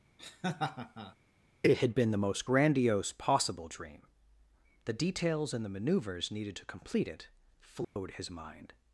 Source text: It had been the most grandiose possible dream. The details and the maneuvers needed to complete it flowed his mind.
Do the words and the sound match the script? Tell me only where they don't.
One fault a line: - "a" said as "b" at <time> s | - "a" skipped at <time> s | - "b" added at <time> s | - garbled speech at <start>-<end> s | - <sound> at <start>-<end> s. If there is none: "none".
- laugh at 0.2-1.2 s
- dropout at 7.8-8.0 s